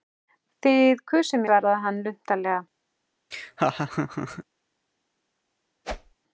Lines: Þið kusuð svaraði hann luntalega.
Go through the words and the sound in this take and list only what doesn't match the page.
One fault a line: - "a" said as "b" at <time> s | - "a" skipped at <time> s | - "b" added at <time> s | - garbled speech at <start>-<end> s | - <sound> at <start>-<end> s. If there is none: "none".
- laugh at 3.3-4.4 s
- whoosh at 5.8-6.2 s